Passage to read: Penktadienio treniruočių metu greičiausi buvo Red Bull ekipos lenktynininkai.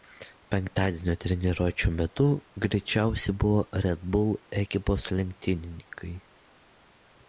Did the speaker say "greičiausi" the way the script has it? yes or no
yes